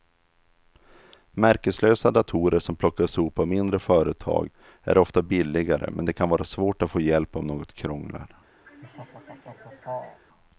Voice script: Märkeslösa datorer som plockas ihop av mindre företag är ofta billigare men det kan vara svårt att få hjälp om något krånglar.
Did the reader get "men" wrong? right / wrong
right